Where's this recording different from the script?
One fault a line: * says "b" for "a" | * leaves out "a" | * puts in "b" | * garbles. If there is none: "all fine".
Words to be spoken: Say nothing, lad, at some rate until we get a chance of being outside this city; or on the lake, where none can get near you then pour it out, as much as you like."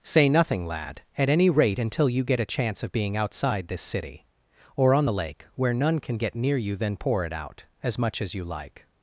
* says "any" for "some"
* says "you" for "we"